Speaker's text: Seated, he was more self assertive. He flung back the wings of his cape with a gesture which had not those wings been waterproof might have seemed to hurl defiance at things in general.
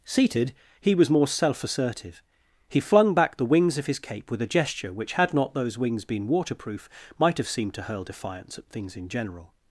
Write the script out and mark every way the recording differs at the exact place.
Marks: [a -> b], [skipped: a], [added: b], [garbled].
Seated, he was more self assertive. He flung back the wings of his cape with a gesture which had not those wings been waterproof might have seemed to hurl defiance at things in general.